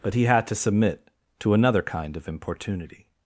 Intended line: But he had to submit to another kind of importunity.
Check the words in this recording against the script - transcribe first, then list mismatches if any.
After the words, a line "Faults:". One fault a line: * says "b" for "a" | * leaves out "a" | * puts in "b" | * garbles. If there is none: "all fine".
But he had to submit to another kind of importunity.
Faults:
all fine